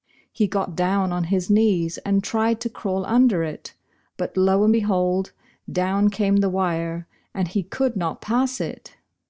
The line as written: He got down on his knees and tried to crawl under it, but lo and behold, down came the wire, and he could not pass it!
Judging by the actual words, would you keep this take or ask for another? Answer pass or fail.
pass